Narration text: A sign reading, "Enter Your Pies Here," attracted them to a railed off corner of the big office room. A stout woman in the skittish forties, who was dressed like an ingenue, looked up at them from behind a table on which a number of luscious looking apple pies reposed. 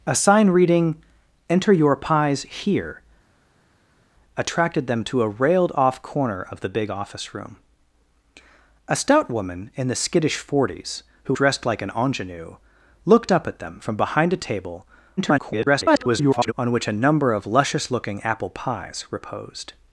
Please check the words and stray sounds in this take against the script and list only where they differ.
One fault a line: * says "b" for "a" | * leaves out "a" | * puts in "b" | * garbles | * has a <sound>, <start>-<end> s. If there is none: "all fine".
* leaves out "was"
* garbles